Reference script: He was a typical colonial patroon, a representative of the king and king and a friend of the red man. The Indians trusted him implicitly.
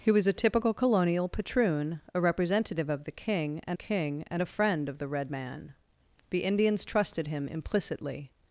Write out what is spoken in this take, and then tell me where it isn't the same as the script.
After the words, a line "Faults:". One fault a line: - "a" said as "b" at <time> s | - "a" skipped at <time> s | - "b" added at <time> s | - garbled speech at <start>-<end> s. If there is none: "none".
He was a typical colonial patroon, a representative of the king and king and a friend of the red man. The Indians trusted him implicitly.
Faults:
none